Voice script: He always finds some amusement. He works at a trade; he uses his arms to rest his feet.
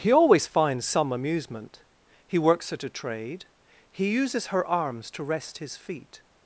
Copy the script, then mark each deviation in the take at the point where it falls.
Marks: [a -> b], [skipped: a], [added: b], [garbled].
He always finds some amusement. He works at a trade; he uses [his -> her] arms to rest his feet.